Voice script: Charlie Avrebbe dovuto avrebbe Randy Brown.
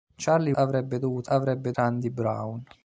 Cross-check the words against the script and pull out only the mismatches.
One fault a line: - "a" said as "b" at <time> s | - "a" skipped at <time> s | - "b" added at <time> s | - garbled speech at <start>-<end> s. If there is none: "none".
none